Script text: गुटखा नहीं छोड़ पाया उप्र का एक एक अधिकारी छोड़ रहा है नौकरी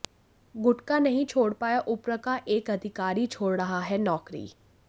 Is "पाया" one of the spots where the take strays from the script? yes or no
no